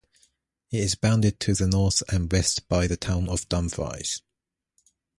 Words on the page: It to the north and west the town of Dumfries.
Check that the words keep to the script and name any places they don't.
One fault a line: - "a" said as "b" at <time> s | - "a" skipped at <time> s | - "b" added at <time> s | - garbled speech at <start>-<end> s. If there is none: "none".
- "is bounded" added at 0.8 s
- "by" added at 2.7 s